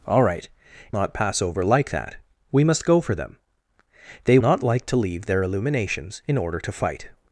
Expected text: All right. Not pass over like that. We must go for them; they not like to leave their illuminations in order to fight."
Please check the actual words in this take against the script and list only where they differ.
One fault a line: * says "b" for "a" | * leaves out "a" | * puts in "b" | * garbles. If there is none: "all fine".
all fine